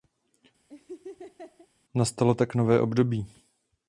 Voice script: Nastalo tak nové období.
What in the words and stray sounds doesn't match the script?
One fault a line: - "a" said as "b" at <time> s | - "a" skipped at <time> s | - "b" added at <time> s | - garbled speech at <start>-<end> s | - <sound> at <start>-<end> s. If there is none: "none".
- laugh at 0.7-1.7 s